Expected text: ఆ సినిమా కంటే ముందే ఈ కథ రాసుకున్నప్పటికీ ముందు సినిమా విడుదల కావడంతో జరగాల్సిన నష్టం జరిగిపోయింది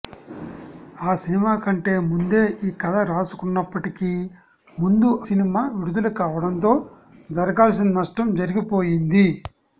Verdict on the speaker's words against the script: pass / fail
pass